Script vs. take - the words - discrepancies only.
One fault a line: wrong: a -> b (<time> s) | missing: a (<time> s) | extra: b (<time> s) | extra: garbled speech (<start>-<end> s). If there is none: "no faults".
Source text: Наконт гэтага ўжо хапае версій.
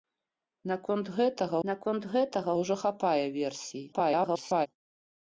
extra: наконт гэтага (1.7 s)
extra: garbled speech (3.9-4.7 s)